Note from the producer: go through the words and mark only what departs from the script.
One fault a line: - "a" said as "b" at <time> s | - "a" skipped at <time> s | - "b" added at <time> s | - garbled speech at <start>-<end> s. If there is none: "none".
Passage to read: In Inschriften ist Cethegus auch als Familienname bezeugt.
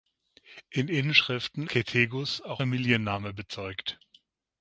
- "ist" skipped at 1.7 s
- "als" skipped at 2.6 s